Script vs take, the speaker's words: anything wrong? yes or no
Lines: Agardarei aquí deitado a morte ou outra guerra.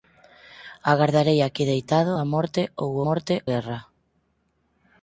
yes